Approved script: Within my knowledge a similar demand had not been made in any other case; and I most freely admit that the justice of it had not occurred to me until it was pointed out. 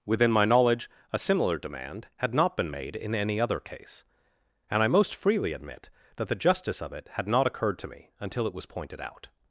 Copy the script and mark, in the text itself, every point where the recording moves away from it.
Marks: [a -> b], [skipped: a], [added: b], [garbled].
Within my knowledge a similar demand had not been made in any other case; and I most freely admit that the justice of it had not occurred to me until it was pointed out.